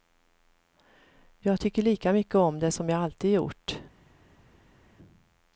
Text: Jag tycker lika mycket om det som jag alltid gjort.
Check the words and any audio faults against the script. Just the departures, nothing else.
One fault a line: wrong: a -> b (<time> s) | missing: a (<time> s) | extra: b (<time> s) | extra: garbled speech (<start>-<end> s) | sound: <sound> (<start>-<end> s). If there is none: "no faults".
no faults